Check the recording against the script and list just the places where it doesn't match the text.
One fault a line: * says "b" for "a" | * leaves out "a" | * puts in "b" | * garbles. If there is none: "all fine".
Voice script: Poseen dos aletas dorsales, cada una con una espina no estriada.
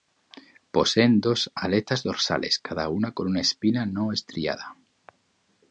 all fine